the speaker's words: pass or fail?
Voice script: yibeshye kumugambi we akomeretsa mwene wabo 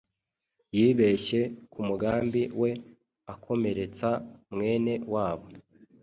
pass